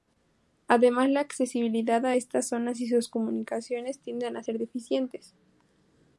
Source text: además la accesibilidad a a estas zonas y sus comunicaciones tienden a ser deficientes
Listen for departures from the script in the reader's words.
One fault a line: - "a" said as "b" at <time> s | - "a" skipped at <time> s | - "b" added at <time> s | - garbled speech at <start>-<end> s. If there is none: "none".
- "a" skipped at 2.2 s